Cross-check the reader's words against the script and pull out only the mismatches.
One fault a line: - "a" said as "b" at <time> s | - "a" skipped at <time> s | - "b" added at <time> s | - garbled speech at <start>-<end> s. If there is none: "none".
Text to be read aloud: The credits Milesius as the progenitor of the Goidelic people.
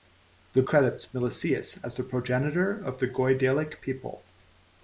none